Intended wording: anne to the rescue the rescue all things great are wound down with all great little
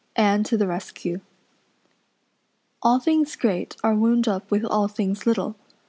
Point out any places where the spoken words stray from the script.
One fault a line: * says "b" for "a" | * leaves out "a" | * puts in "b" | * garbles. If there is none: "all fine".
* leaves out "the rescue"
* says "up" for "down"
* says "things" for "great"